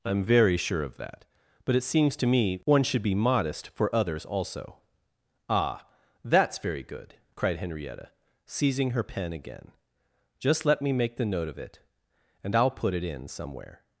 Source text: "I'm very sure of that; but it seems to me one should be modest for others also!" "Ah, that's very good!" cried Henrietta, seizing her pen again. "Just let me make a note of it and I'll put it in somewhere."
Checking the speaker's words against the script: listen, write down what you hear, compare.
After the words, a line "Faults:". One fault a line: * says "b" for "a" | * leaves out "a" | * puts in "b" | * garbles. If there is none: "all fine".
"I'm very sure of that; but it seems to me one should be modest for others also!" "Ah, that's very good!" cried Henrietta, seizing her pen again. "Just let me make the note of it and I'll put it in somewhere."
Faults:
* says "the" for "a"